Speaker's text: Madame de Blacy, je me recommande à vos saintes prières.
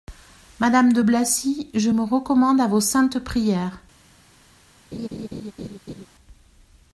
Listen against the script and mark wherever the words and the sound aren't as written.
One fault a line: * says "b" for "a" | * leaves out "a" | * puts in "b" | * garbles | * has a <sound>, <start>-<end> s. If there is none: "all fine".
* has a laugh, 4.9-6.1 s